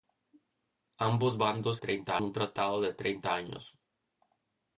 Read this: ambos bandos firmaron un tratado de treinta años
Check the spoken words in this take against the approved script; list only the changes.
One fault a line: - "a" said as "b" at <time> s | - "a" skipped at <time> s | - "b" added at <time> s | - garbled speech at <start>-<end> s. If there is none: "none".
- "firmaron" said as "treinta" at 1.8 s